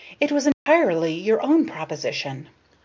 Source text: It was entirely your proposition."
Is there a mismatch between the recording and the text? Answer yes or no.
yes